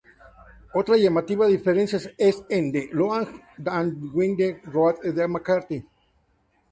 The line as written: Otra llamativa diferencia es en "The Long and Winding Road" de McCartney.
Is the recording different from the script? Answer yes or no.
no